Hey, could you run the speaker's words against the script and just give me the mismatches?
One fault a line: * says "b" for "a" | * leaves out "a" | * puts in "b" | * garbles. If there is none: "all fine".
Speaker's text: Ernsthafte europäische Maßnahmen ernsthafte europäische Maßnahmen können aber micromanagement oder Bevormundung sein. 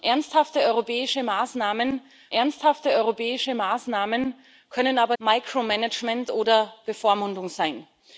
all fine